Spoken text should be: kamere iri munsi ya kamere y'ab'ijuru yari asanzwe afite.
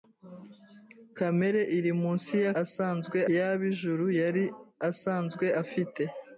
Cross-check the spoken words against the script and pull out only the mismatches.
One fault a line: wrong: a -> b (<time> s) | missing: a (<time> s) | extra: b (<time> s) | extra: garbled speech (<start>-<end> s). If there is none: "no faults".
wrong: kamere -> asanzwe (2.6 s)